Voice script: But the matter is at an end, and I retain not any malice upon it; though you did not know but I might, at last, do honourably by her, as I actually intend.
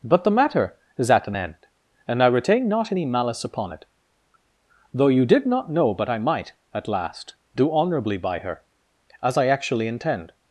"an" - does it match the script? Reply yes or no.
yes